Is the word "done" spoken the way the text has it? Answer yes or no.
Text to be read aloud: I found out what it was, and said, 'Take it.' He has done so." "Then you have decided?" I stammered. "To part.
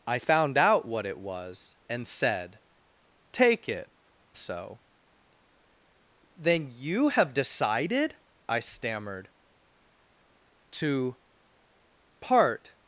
no